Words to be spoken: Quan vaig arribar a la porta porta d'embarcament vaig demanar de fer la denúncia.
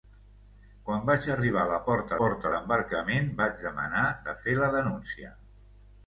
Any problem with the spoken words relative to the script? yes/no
no